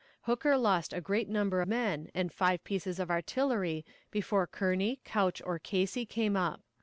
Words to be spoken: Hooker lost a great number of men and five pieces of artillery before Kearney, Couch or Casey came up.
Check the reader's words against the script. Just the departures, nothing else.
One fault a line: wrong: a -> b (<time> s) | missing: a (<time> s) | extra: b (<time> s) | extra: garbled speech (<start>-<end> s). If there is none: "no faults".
missing: of (1.6 s)